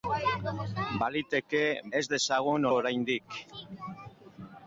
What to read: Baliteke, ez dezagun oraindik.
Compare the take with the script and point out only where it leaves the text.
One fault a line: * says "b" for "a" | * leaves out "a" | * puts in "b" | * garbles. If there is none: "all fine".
all fine